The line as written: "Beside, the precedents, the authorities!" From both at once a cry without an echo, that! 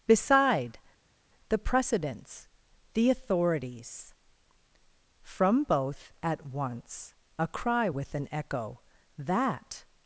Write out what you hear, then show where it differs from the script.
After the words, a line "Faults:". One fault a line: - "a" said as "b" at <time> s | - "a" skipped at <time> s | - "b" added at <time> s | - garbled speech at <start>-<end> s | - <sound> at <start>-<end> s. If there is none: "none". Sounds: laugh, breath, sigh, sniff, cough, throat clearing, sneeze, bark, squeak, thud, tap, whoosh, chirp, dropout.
"Beside, the precedents, the authorities!" From both at once a cry with an echo, that!
Faults:
- "without" said as "with" at 7.9 s